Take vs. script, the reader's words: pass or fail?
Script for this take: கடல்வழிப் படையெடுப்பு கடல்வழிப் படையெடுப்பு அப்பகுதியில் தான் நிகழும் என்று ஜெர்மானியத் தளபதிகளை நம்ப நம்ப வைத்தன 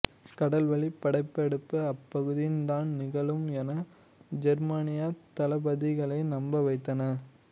fail